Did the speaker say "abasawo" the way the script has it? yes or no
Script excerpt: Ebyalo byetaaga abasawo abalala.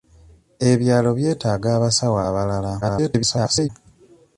yes